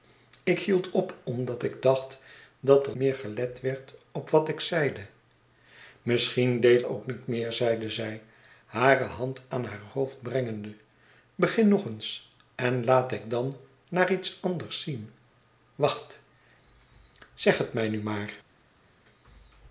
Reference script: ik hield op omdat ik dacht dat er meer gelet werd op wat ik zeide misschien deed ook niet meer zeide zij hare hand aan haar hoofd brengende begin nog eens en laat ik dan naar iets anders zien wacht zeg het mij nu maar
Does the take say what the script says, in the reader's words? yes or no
yes